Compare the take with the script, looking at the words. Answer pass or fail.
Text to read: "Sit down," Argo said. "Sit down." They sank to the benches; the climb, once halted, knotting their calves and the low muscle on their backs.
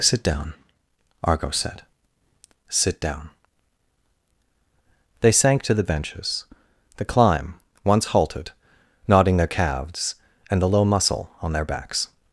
pass